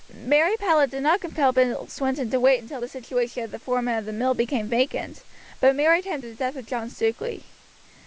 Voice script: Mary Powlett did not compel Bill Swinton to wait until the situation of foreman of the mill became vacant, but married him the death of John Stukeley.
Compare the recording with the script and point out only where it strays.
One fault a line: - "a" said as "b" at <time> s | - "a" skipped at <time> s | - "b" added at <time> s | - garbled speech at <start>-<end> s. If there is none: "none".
none